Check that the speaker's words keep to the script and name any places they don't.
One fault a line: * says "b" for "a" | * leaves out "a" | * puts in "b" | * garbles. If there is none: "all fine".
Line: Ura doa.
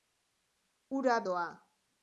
all fine